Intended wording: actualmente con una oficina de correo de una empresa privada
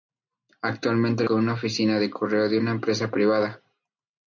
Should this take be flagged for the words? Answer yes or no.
no